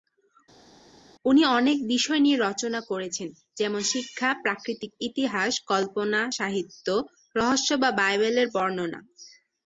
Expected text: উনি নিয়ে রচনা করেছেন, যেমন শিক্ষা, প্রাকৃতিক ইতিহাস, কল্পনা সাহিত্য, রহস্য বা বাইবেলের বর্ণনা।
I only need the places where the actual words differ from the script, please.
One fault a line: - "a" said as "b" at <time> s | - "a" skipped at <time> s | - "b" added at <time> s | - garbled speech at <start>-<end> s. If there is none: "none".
- "অনেক বিষয়" added at 1.6 s